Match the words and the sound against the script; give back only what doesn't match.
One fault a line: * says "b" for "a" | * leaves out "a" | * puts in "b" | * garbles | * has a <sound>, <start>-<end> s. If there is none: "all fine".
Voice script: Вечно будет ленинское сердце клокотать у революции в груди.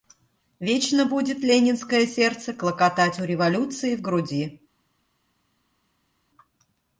all fine